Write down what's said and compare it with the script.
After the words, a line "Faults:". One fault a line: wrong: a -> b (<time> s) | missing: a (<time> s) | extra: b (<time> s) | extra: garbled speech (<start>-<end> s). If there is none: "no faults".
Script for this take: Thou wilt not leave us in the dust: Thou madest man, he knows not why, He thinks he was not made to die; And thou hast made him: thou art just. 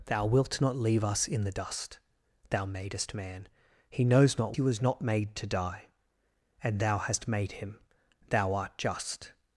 Thou wilt not leave us in the dust: Thou madest man, he knows not he was not made to die; And thou hast made him: thou art just.
Faults:
missing: why He thinks (4.5 s)